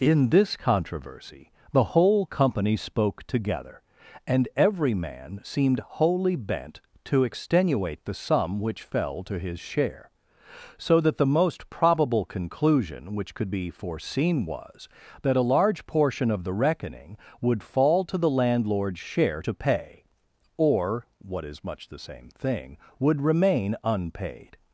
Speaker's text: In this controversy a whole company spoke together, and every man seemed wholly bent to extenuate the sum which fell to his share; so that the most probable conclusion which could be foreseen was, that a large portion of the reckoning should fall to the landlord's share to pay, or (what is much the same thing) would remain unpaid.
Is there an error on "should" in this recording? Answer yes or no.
yes